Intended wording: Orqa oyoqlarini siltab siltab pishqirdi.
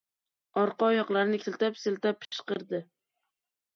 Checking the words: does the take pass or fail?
pass